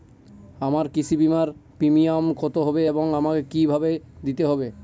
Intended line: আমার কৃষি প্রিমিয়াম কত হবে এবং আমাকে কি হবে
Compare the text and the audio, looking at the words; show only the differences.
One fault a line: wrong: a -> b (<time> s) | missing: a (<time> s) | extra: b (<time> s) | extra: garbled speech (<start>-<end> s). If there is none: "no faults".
extra: বিমার (1.2 s)
extra: ভাবে দিতে (3.7 s)